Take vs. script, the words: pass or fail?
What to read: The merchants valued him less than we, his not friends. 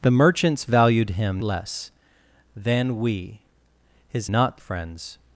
pass